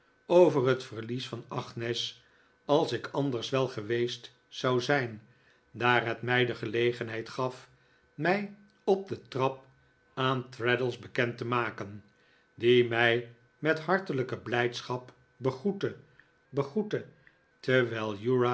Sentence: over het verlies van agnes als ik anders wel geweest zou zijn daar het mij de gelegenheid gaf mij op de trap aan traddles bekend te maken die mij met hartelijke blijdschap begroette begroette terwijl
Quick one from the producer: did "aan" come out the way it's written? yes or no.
yes